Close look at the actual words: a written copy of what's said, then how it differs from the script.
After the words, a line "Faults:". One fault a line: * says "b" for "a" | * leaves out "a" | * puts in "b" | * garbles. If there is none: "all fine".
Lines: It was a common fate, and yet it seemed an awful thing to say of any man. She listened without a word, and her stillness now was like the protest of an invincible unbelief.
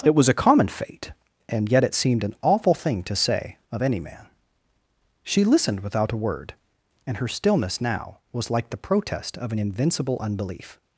It was a common fate, and yet it seemed an awful thing to say of any man. She listened without a word, and her stillness now was like the protest of an invincible unbelief.
Faults:
all fine